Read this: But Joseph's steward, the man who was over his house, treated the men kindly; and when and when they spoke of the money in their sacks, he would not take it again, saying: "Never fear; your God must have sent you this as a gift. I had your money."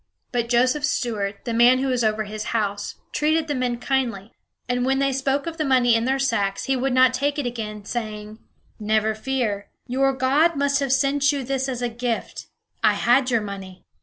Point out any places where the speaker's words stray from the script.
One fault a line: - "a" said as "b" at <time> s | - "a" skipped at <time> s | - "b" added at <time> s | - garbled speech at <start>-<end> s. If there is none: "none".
- "and when" skipped at 5.0 s